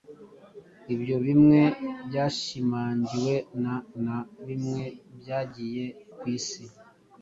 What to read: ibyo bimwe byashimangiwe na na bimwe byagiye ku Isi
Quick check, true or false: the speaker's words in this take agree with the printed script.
true